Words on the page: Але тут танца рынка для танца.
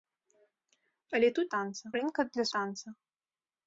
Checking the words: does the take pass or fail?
pass